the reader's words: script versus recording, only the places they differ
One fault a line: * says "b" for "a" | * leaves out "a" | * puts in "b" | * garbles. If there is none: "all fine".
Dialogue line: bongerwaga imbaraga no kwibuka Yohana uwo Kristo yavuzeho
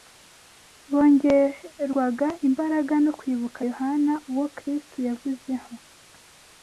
all fine